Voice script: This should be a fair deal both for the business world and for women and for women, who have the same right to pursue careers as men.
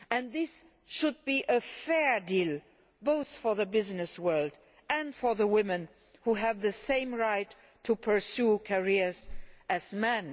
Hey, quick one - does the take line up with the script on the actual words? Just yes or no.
no